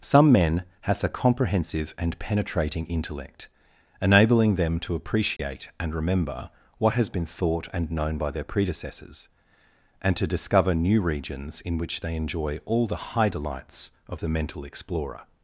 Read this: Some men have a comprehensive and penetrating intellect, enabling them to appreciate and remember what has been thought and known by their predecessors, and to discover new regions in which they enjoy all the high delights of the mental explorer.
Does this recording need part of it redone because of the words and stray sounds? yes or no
yes